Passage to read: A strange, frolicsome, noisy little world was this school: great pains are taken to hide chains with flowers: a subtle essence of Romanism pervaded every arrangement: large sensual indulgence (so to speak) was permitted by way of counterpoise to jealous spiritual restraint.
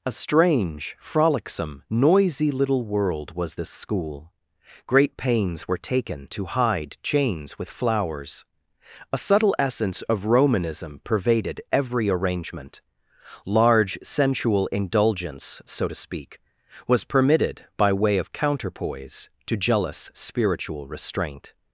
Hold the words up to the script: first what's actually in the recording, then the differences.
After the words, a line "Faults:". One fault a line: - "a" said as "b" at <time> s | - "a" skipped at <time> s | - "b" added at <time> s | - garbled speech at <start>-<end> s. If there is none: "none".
A strange, frolicsome, noisy little world was this school: great pains were taken to hide chains with flowers: a subtle essence of Romanism pervaded every arrangement: large sensual indulgence (so to speak) was permitted by way of counterpoise to jealous spiritual restraint.
Faults:
- "are" said as "were" at 5.7 s